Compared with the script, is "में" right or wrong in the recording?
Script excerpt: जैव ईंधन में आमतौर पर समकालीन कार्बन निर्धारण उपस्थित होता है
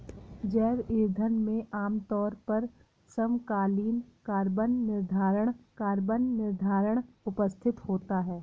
right